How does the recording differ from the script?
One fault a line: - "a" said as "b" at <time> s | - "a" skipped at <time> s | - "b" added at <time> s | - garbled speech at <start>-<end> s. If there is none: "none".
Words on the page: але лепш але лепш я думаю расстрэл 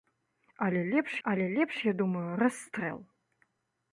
none